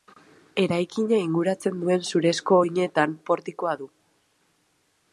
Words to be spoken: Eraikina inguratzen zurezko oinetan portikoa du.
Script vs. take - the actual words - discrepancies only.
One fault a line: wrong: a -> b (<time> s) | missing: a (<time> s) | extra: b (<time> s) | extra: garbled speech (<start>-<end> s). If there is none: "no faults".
extra: duen (1.8 s)